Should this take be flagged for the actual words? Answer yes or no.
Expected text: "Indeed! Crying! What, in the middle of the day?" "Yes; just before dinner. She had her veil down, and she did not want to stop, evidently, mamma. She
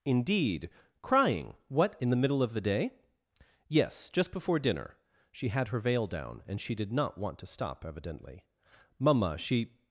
no